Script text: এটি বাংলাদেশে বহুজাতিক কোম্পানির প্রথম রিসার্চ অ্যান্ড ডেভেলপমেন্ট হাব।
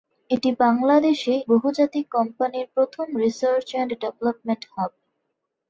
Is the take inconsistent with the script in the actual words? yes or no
no